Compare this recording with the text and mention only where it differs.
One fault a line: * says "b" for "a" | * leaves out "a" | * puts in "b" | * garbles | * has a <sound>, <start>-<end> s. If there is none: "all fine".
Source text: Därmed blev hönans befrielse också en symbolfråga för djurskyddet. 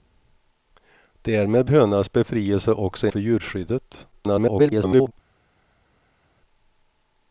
* leaves out "blev"
* leaves out "en symbolfråga"
* garbles